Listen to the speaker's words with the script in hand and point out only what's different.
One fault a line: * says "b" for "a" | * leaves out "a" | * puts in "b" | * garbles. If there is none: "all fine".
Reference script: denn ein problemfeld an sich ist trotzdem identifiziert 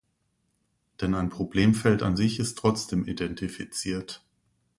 all fine